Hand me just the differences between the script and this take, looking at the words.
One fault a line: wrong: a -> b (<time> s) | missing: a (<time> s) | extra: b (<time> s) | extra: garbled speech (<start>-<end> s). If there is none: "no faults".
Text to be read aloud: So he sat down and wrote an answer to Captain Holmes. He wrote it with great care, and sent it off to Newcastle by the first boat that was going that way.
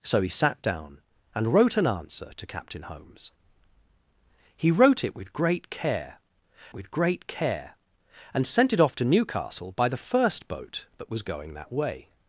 extra: with great care (6.7 s)